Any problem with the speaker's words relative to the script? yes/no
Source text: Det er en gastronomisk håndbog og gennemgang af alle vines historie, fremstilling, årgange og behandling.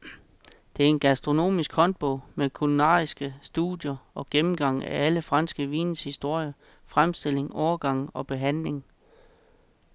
yes